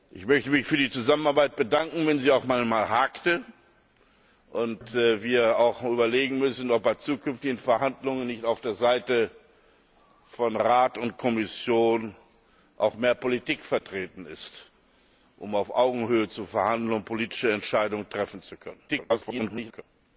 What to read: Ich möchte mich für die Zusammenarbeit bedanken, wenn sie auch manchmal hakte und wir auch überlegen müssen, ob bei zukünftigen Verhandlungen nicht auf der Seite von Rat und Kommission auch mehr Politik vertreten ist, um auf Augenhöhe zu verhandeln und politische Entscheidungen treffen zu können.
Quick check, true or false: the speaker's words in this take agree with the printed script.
false